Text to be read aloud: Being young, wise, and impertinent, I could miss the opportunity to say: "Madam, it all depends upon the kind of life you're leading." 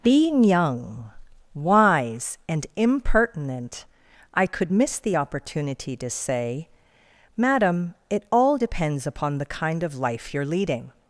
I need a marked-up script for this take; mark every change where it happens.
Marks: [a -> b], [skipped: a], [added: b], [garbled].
Being young, wise, and impertinent, I could miss the opportunity to say: "Madam, it all depends upon the kind of life you're leading."